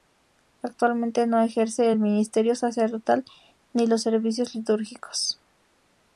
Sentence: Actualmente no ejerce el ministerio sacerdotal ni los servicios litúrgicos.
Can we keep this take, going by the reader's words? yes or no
yes